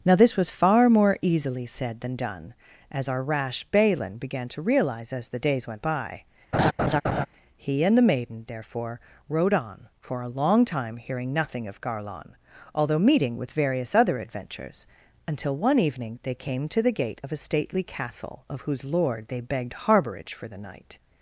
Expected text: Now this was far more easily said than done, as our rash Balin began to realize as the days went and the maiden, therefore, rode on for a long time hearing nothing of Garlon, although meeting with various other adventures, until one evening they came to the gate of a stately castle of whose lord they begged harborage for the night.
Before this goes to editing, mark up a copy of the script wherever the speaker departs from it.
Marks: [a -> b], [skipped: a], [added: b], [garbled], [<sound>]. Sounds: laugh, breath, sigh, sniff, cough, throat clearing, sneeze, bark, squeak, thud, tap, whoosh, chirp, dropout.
Now this was far more easily said than done, as our rash Balin began to realize as the days went [added: by He] [laugh] and the maiden, therefore, rode on for a long time hearing nothing of Garlon, although meeting with various other adventures, until one evening they came to the gate of a stately castle of whose lord they begged harborage for the night.